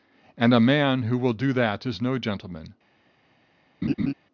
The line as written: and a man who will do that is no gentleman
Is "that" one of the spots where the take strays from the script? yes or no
no